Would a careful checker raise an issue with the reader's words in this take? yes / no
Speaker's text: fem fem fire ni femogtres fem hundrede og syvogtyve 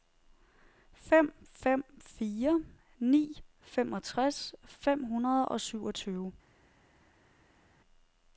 no